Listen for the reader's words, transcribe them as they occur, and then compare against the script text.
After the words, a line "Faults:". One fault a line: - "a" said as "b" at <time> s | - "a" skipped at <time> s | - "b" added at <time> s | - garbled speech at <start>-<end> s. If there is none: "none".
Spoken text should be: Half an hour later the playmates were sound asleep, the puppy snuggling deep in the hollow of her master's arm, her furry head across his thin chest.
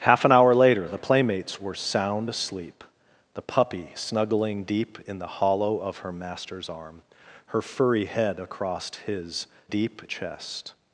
Half an hour later the playmates were sound asleep, the puppy snuggling deep in the hollow of her master's arm, her furry head across his deep chest.
Faults:
- "thin" said as "deep" at 9.7 s